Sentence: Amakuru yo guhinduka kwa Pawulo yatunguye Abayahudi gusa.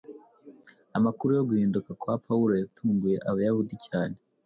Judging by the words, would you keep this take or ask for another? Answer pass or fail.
fail